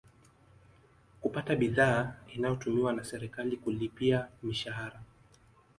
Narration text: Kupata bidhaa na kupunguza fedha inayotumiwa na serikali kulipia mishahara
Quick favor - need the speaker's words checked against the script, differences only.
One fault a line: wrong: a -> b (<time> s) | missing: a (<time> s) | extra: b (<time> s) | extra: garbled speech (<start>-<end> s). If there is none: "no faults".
missing: na kupunguza fedha (2.1 s)